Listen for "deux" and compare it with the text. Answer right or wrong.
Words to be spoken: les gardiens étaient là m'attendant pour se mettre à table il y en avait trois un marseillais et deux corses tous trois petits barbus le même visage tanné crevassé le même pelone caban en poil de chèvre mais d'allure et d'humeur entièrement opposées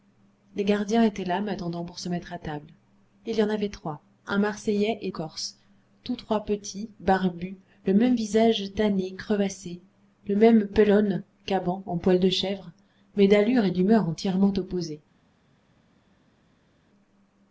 wrong